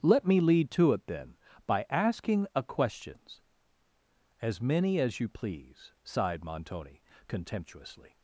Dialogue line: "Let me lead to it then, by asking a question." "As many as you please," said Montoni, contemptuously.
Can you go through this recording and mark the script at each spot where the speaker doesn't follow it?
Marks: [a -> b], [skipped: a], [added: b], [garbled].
"Let me lead to it then, by asking a [question." -> questions] "As many as you please," [said -> sighed] Montoni, contemptuously.